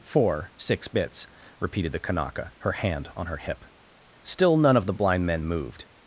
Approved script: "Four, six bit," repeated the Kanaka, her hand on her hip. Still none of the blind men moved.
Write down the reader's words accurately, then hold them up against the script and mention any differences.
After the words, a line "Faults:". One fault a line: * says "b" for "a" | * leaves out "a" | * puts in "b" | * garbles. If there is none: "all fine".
"Four, six bits," repeated the Kanaka, her hand on her hip. Still none of the blind men moved.
Faults:
* says "bits" for "bit"